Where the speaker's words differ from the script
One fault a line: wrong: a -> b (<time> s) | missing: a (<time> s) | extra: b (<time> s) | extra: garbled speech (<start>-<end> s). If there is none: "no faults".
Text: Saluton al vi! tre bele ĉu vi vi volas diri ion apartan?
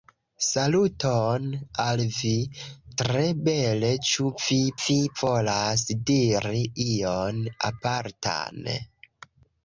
no faults